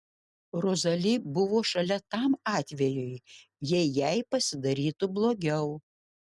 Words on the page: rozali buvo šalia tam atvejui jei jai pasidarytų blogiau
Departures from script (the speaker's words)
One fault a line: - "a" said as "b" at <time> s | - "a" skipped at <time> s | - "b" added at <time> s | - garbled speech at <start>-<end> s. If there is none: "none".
none